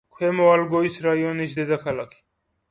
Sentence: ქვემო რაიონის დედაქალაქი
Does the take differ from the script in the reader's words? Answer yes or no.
yes